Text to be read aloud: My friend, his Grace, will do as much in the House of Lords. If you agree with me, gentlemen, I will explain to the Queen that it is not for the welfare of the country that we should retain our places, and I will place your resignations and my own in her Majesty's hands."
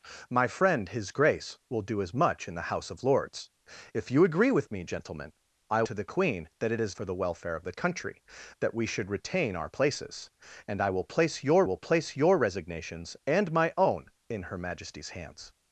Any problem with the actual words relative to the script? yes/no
yes